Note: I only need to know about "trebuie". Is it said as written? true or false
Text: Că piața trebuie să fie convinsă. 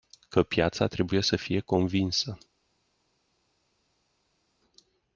true